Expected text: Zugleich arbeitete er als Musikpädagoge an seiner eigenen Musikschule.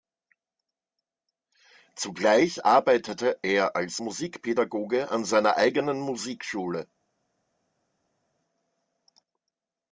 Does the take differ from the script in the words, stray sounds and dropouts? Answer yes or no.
no